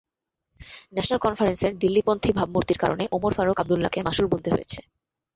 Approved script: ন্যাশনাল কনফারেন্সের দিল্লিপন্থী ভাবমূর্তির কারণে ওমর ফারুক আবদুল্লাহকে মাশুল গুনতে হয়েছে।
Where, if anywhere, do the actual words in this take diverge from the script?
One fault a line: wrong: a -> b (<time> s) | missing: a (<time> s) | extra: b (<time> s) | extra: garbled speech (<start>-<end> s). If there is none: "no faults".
no faults